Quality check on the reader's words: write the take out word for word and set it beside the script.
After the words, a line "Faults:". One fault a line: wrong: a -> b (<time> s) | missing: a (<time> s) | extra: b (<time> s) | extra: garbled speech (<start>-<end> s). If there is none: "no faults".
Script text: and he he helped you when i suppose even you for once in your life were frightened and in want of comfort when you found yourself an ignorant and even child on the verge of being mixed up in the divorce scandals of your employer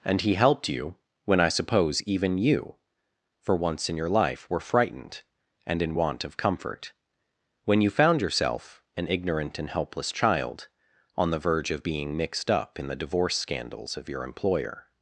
and he helped you when i suppose even you for once in your life were frightened and in want of comfort when you found yourself an ignorant and helpless child on the verge of being mixed up in the divorce scandals of your employer
Faults:
missing: he (0.3 s)
wrong: even -> helpless (9.7 s)